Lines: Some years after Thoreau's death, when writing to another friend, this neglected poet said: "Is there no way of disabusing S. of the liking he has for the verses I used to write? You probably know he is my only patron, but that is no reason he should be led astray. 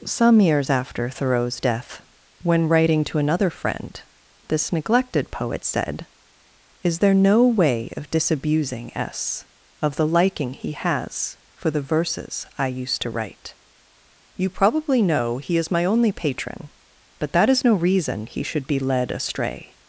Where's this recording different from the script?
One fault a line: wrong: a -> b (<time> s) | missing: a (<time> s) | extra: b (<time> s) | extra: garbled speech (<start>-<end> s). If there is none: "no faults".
no faults